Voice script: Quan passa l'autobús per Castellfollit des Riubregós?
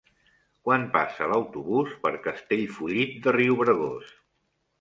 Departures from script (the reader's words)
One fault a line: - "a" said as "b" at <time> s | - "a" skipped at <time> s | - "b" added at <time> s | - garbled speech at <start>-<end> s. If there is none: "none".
- "des" said as "de" at 3.2 s